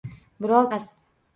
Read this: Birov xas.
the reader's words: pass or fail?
pass